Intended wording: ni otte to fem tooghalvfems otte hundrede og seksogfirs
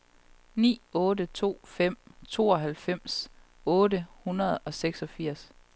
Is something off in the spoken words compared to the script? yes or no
no